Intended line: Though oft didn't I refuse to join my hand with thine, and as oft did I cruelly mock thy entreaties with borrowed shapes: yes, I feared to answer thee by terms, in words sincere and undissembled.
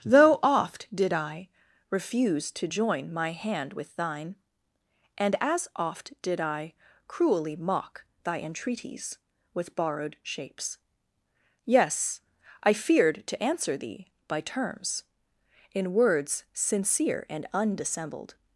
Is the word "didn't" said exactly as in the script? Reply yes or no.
no